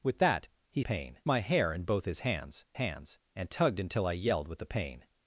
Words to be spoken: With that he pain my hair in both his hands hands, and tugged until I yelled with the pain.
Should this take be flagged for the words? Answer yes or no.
no